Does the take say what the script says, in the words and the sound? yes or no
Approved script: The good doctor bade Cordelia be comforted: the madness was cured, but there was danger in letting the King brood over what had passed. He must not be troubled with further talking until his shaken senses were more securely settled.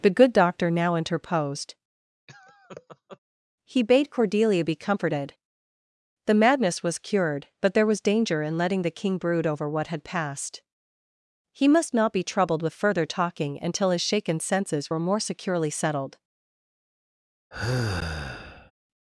no